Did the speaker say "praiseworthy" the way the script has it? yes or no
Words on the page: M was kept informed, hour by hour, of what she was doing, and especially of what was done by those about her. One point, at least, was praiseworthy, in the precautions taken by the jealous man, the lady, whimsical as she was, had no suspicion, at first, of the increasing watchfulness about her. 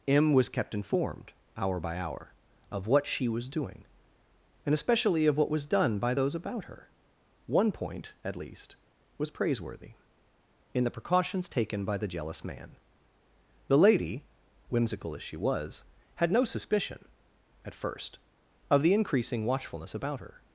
yes